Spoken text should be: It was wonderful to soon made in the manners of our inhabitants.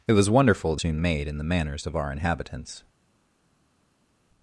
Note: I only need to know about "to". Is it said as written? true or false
true